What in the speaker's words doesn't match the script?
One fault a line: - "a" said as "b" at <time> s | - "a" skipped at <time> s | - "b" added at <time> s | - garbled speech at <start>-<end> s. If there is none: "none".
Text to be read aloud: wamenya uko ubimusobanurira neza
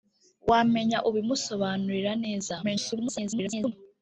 - "uko" skipped at 1.0 s
- garbled speech at 2.6-3.7 s